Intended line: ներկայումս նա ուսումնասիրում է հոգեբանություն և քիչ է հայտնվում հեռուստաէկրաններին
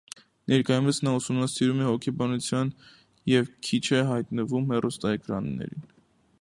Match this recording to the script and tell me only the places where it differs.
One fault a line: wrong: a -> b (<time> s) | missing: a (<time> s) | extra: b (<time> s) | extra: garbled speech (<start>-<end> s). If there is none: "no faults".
no faults